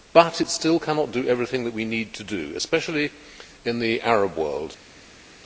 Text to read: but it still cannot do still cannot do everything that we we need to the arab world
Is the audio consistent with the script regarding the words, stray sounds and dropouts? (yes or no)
no